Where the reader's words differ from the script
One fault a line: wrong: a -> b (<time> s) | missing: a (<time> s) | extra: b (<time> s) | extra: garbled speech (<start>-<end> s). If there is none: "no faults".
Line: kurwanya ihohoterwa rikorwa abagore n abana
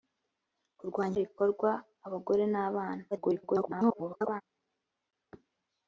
missing: ihohoterwa (1.2 s)
extra: garbled speech (3.1-4.4 s)